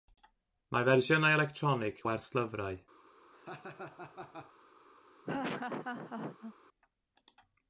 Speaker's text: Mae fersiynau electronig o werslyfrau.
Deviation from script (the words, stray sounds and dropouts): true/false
true